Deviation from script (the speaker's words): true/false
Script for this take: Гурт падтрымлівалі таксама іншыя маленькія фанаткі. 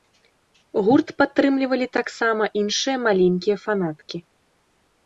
false